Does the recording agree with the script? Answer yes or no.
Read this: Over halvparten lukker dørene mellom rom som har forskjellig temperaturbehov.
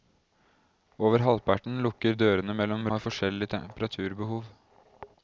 no